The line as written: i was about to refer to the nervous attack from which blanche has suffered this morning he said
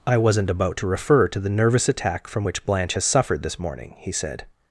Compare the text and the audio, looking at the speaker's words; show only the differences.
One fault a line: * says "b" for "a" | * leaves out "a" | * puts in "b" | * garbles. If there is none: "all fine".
* says "wasn't" for "was"